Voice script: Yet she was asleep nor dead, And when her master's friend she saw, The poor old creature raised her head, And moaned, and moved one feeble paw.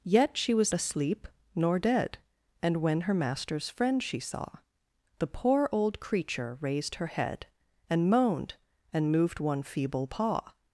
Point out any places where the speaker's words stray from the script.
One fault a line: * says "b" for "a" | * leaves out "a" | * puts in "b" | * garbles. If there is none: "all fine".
all fine